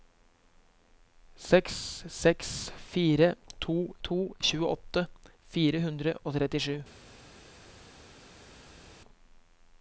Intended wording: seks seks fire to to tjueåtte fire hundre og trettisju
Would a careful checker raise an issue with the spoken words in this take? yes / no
no